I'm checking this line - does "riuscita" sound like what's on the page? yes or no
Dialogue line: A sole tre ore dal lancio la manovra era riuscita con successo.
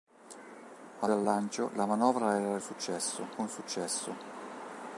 no